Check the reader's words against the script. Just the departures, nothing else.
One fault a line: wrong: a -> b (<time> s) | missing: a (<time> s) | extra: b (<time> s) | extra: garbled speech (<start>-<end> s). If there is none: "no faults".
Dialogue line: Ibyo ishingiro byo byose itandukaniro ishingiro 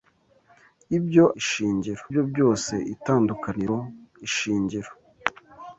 no faults